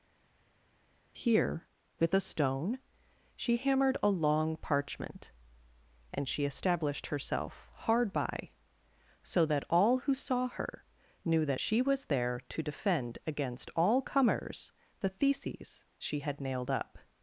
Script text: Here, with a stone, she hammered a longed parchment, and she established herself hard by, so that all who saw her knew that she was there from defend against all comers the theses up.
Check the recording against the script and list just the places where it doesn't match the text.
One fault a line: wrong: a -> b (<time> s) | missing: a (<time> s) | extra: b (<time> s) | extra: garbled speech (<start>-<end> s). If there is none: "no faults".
wrong: longed -> long (4.1 s)
wrong: from -> to (12.5 s)
extra: she had nailed (16.0 s)